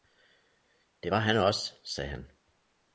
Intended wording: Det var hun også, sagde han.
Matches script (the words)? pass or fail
fail